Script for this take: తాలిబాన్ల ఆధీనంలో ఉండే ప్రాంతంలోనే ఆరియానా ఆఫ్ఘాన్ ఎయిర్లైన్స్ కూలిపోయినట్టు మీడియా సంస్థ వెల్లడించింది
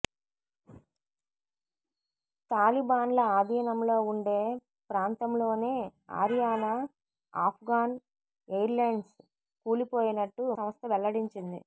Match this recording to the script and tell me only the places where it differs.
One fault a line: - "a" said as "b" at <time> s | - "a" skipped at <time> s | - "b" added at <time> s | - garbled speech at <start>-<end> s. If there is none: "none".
- "మీడియా" skipped at 10.4 s